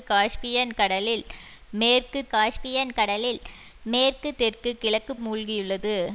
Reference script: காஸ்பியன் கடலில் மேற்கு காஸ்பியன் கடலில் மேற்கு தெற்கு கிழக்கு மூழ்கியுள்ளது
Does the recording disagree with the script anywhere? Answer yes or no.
no